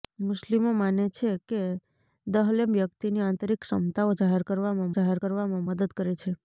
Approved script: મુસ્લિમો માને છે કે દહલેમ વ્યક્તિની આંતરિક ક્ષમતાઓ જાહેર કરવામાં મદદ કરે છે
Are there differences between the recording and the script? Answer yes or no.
yes